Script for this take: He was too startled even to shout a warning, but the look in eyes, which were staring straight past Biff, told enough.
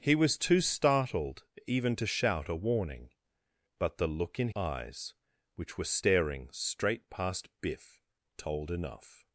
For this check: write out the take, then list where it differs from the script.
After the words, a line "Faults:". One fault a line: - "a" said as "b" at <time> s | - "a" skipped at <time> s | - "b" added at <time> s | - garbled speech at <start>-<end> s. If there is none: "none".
He was too startled even to shout a warning, but the look in eyes, which were staring straight past Biff, told enough.
Faults:
none